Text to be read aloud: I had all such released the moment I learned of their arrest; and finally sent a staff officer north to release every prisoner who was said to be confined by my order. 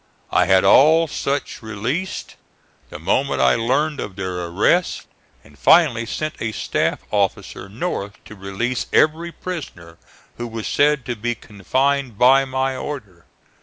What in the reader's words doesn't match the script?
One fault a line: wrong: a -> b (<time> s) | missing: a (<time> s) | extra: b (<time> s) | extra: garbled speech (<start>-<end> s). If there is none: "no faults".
no faults